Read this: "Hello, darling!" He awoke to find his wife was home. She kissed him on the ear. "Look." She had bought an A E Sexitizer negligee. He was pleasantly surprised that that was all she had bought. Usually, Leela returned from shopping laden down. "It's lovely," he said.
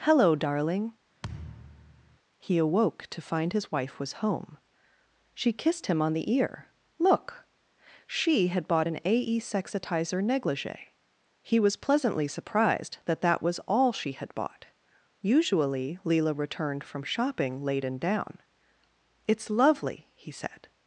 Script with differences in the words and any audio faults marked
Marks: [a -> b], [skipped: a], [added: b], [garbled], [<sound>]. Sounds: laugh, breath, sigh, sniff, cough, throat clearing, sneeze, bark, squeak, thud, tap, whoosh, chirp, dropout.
"Hello, darling!" [thud] He awoke to find his wife was home. She kissed him on the ear. "Look." She had bought an A E Sexitizer negligee. He was pleasantly surprised that that was all she had bought. Usually, Leela returned from shopping laden down. "It's lovely," he said.